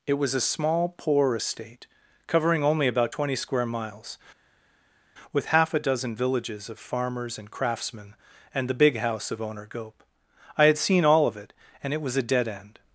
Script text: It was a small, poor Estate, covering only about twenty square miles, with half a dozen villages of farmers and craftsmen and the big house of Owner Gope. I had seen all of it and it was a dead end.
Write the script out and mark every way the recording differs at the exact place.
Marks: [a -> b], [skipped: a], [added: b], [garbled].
It was a small, poor Estate, covering only about twenty square miles, with half a dozen villages of farmers and craftsmen and the big house of Owner Gope. I had seen all of it and it was a dead end.